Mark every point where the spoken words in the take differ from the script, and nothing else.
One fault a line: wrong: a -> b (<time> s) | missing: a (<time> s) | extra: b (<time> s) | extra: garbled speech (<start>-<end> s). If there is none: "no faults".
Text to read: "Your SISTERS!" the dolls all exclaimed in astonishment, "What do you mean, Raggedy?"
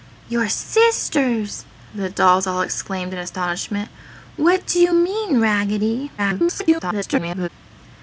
extra: garbled speech (6.2-7.5 s)